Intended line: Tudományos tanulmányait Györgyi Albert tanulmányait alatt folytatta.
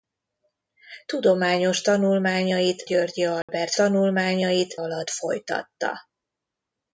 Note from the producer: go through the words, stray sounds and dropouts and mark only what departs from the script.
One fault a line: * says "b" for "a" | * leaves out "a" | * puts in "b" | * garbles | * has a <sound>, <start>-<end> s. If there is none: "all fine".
* has a dropout, 3.4-3.5 s